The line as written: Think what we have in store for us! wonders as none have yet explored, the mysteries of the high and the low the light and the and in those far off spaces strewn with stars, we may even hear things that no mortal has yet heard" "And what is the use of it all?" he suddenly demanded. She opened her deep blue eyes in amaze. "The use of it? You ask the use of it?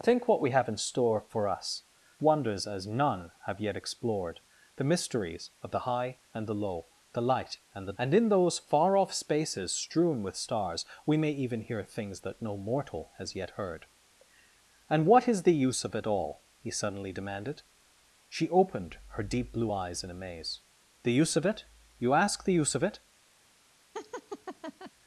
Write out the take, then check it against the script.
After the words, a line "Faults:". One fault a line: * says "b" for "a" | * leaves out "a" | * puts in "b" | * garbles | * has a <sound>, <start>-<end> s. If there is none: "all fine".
Think what we have in store for us! wonders as none have yet explored, the mysteries of the high and the low the light and the and in those far off spaces strewn with stars, we may even hear things that no mortal has yet heard" "And what is the use of it all?" he suddenly demanded. She opened her deep blue eyes in amaze. "The use of it? You ask the use of it?
Faults:
* has a laugh, 23.9-24.9 s